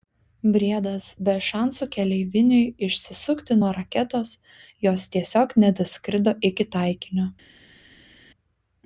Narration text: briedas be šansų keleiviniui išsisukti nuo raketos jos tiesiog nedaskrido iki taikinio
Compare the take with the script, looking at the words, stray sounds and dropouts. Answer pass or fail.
pass